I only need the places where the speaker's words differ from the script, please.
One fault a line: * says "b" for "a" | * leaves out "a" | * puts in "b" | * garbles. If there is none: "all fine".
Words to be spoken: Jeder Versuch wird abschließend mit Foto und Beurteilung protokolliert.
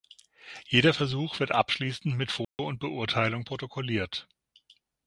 all fine